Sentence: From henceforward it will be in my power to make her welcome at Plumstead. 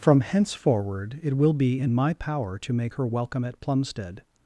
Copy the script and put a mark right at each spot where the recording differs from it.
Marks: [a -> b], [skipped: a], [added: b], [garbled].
From henceforward it will be in my power to make her welcome at Plumstead.